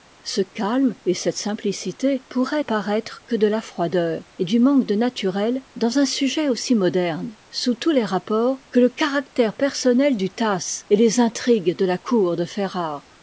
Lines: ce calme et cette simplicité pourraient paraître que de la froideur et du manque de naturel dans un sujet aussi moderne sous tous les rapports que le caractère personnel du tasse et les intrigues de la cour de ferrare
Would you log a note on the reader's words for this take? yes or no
no